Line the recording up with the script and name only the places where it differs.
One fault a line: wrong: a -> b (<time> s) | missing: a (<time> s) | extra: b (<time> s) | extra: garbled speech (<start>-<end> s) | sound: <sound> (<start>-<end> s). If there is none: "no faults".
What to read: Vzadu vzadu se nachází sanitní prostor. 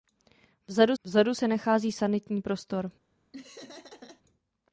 sound: laugh (3.3-4.2 s)